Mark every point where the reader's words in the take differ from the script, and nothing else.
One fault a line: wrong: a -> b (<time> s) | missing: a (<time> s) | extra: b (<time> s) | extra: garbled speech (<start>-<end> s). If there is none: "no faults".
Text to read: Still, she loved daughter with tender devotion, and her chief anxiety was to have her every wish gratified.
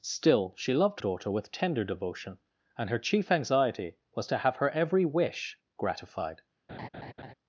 no faults